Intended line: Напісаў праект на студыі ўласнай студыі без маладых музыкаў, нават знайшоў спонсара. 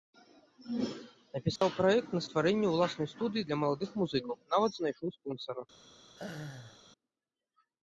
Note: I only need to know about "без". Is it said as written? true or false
false